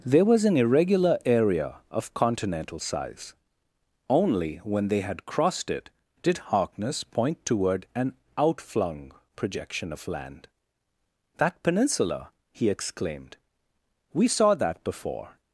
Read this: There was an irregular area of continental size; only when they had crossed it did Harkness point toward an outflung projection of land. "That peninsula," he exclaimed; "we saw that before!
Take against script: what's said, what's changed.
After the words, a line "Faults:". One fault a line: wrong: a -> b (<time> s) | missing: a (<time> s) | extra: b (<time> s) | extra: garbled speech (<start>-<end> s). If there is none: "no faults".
There was an irregular area of continental size; only when they had crossed it did Harkness point toward an outflung projection of land. "That peninsula," he exclaimed; "we saw that before!
Faults:
no faults